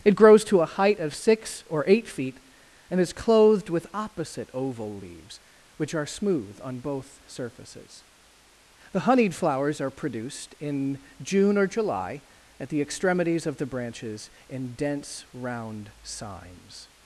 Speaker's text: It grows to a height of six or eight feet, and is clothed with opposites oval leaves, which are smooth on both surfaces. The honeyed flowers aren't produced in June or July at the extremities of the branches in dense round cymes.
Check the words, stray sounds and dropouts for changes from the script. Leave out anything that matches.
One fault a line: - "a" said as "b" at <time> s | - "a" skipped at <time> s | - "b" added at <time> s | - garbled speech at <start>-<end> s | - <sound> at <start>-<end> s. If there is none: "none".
- "opposites" said as "opposite" at 3.9 s
- "aren't" said as "are" at 9.8 s